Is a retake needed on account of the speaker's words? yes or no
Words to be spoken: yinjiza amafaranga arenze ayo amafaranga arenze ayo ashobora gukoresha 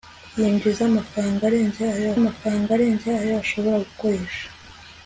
no